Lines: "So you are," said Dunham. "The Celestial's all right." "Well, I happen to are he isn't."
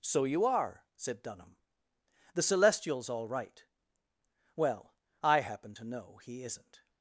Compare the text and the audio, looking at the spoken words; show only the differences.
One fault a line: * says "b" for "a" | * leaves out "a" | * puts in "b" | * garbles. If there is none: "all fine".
* says "know" for "are"